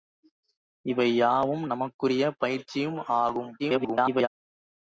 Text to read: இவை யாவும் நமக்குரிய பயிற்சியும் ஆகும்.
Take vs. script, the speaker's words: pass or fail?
fail